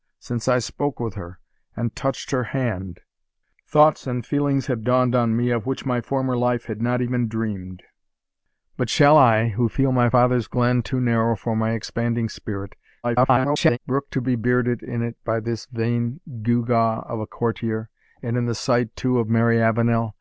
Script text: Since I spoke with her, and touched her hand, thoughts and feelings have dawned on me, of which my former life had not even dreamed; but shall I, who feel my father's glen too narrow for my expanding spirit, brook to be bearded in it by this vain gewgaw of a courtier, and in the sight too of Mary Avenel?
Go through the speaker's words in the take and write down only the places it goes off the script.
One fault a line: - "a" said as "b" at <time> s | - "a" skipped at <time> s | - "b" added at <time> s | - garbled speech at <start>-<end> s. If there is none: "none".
- garbled speech at 13.0-13.8 s